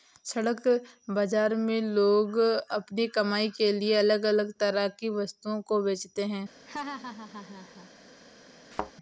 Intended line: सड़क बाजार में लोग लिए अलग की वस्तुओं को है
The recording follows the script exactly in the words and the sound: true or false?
false